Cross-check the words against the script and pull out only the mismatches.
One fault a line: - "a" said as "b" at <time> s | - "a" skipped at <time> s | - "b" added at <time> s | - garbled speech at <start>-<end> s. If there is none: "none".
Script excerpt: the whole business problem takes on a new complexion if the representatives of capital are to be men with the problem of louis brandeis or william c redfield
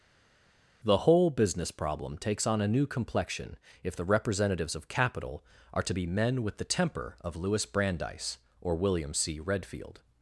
- "problem" said as "temper" at 6.6 s